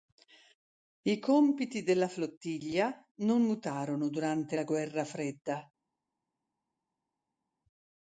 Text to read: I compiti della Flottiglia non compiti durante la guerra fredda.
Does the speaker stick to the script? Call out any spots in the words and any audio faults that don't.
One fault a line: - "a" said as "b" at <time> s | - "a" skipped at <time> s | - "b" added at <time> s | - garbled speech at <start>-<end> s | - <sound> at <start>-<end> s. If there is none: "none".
- "compiti" said as "mutarono" at 3.4 s